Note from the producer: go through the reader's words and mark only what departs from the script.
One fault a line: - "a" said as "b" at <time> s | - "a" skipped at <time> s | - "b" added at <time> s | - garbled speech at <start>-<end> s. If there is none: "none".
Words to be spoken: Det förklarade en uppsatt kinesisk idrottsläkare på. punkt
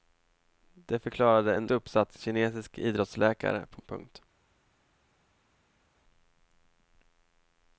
none